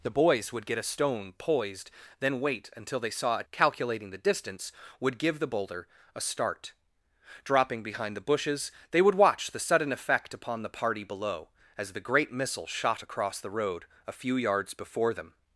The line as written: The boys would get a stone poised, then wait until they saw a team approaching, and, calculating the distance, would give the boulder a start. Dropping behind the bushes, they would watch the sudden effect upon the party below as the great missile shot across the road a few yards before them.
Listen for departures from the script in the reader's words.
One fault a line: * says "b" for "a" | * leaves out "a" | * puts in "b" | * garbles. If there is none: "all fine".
* leaves out "team approaching and"